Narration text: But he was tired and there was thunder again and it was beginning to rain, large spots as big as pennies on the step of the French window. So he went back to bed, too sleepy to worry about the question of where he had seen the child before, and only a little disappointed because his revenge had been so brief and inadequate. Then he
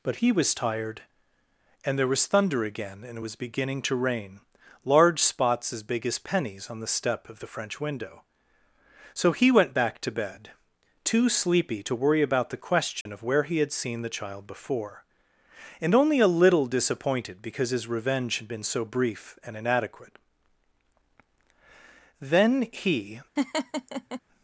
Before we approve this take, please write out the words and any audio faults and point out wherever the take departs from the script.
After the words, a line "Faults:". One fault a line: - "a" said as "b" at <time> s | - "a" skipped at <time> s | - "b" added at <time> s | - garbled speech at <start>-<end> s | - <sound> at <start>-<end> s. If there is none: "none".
But he was tired and there was thunder again and it was beginning to rain, large spots as big as pennies on the step of the French window. So he went back to bed, too sleepy to worry about the question of where he had seen the child before, and only a little disappointed because his revenge had been so brief and inadequate. Then he
Faults:
- dropout at 13.0-13.1 s
- laugh at 23.4-24.2 s